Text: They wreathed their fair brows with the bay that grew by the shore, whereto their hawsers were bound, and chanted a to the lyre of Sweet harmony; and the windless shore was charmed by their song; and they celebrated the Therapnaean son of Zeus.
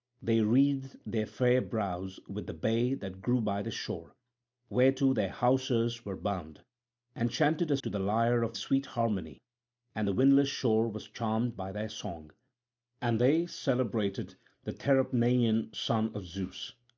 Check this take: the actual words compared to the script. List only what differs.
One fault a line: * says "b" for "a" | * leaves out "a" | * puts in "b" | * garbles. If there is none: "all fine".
all fine